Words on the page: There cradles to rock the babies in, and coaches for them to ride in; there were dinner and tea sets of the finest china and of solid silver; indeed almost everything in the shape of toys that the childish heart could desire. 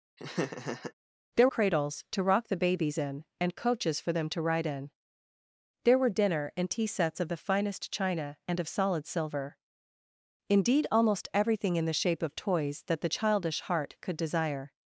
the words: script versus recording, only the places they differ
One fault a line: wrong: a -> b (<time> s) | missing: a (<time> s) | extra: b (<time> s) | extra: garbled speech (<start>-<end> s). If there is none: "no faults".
no faults